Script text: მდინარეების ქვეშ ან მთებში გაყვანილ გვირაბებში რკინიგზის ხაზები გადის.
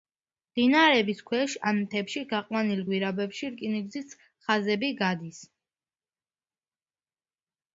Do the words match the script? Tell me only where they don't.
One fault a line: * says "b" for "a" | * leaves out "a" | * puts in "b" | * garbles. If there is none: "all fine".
all fine